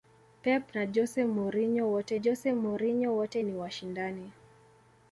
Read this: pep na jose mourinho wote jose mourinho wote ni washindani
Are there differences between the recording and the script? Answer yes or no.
no